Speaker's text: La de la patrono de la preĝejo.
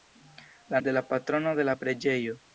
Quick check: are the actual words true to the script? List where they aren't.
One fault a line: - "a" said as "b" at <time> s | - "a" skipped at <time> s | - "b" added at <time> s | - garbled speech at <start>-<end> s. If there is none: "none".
none